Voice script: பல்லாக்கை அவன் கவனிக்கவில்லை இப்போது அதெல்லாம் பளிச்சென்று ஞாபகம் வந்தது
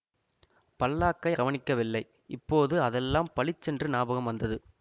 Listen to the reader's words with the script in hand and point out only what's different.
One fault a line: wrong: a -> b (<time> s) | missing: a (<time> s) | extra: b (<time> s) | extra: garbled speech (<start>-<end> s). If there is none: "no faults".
missing: அவன் (1.3 s)